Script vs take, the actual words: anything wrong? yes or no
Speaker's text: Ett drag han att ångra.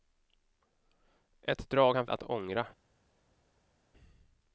no